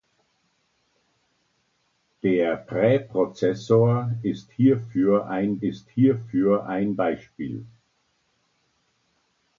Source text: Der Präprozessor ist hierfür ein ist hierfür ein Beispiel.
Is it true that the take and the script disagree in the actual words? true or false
false